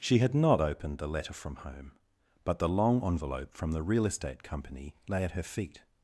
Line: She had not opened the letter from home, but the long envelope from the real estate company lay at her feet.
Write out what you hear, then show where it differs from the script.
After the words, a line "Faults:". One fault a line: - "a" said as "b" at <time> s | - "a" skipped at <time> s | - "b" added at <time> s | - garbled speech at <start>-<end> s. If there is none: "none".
She had not opened the letter from home, but the long envelope from the real estate company lay at her feet.
Faults:
none